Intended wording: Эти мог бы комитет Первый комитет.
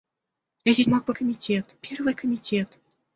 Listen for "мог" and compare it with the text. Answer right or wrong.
right